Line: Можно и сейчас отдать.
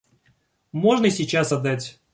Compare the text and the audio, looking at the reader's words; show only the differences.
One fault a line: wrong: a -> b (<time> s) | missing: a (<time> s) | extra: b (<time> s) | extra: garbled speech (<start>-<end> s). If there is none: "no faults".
no faults